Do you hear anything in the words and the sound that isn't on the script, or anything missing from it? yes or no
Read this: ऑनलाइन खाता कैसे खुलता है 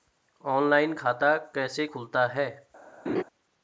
yes